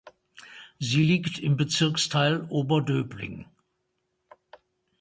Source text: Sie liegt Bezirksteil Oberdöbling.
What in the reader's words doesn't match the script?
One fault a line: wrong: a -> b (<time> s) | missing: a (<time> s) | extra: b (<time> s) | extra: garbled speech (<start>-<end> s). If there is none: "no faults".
extra: im (1.4 s)